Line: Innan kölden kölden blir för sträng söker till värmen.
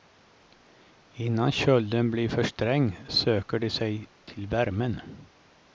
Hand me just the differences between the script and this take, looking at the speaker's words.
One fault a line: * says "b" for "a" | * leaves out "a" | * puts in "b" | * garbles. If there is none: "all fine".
* leaves out "kölden"
* puts in "de sig"